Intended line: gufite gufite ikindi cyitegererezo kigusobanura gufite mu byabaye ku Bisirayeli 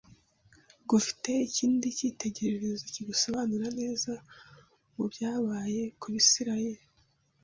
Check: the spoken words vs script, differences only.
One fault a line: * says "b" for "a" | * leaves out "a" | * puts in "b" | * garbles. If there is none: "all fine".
* leaves out "gufite"
* says "neza" for "gufite"